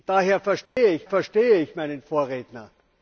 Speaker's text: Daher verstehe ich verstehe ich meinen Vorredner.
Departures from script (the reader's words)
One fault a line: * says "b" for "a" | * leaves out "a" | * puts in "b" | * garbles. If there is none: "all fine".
all fine